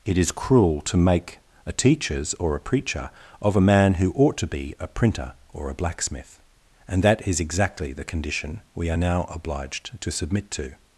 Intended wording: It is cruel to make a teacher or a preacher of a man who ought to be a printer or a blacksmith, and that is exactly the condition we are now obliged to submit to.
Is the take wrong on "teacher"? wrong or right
wrong